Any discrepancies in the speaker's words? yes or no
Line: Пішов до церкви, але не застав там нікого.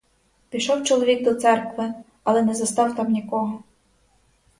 yes